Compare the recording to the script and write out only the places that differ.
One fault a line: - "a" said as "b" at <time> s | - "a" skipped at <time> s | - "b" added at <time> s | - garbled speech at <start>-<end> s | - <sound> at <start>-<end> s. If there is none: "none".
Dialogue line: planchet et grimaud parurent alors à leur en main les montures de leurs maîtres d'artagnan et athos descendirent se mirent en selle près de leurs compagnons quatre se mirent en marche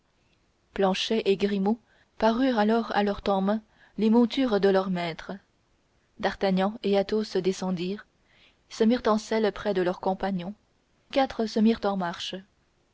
none